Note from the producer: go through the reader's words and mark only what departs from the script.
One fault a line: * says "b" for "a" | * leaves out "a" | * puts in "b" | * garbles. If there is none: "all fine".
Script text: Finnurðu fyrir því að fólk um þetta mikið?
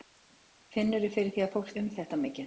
all fine